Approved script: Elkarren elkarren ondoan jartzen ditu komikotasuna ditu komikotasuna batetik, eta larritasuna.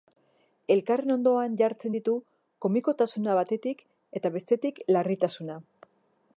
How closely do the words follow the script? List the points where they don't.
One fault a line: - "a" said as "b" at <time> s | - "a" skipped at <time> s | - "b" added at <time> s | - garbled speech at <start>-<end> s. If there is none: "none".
- "elkarren" skipped at 1.1 s
- "ditu komikotasuna" skipped at 3.4 s
- "bestetik" added at 4.4 s